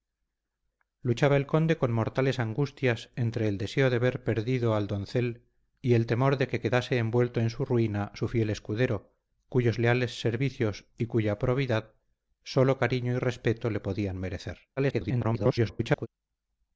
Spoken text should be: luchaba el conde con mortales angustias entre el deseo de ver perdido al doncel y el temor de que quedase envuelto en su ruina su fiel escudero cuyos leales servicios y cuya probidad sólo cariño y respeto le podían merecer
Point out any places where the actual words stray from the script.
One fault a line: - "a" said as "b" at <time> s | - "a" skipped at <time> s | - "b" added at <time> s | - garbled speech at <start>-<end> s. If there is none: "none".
- garbled speech at 14.8-16.1 s